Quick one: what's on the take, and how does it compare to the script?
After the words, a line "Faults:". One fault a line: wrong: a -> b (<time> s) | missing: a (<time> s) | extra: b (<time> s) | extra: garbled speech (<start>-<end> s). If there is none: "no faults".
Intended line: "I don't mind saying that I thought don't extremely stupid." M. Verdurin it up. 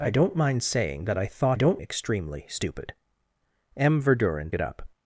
"I don't mind saying that I thought don't extremely stupid." M. Verdurin it up.
Faults:
no faults